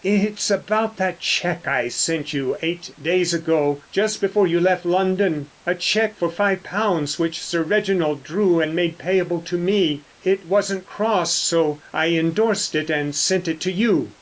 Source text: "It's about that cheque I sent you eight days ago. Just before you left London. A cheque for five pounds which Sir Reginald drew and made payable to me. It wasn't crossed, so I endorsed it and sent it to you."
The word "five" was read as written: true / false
true